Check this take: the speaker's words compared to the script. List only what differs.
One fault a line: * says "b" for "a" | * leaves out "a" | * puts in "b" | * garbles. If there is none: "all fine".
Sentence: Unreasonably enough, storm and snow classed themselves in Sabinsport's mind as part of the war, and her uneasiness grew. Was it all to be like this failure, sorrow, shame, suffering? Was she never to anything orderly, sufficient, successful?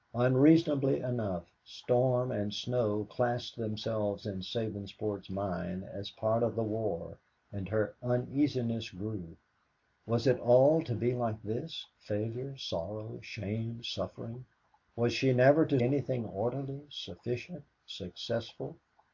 all fine